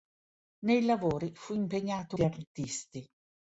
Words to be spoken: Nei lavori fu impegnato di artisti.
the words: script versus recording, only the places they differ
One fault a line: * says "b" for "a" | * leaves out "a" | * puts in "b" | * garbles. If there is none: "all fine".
all fine